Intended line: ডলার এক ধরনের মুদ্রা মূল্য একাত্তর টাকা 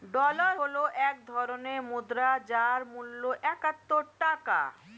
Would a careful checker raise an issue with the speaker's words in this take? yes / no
yes